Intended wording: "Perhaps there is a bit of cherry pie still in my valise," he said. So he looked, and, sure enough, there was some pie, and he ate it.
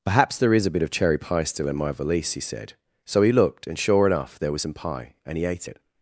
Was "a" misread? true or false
false